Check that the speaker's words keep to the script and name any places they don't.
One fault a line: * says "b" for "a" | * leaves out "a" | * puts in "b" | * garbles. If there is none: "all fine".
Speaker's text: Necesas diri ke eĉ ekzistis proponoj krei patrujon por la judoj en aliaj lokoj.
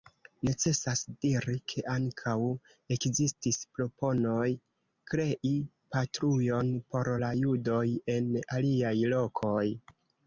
* says "ankaŭ" for "eĉ"